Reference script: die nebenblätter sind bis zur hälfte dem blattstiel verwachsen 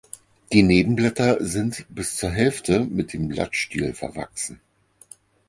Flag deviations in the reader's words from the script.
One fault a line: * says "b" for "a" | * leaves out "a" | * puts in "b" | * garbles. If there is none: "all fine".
* puts in "mit"